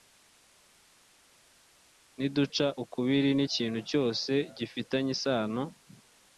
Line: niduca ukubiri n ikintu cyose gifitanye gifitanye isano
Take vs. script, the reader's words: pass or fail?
fail